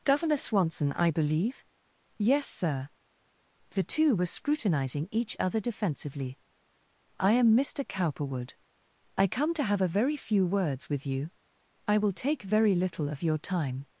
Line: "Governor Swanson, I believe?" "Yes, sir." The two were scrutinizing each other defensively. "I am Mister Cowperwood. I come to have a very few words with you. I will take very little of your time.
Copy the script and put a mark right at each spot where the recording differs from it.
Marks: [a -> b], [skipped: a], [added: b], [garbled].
"Governor Swanson, I believe?" "Yes, sir." The two were scrutinizing each other defensively. "I am Mister Cowperwood. I come to have a very few words with you. I will take very little of your time.